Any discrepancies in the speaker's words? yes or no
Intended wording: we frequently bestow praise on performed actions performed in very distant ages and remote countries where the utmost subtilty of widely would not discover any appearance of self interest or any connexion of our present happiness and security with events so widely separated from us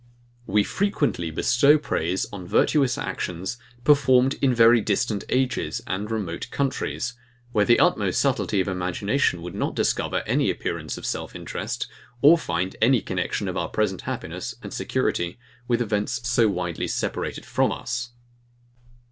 yes